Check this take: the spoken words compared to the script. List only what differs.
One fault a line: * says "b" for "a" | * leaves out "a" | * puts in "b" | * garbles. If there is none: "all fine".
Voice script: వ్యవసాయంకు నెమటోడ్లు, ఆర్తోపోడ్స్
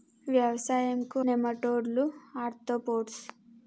all fine